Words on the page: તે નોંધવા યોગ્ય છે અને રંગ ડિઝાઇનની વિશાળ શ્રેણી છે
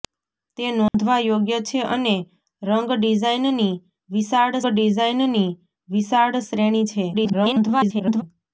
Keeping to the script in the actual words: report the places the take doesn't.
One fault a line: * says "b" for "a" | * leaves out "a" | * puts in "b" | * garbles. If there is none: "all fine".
* puts in "ડિઝાઇનની વિશાળ"
* garbles